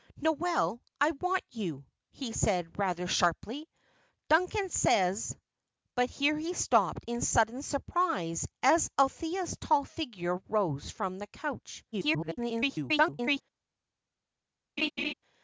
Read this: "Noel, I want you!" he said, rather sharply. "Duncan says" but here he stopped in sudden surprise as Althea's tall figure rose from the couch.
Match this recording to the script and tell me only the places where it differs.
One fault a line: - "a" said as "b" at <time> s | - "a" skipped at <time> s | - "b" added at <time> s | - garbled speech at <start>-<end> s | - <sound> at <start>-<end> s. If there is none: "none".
- garbled speech at 11.9-13.4 s
- laugh at 14.8-15.1 s